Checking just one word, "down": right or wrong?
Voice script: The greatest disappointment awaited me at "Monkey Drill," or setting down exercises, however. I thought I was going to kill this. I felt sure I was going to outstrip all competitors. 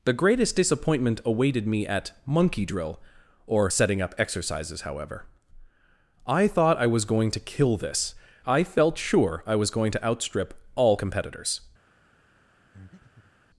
wrong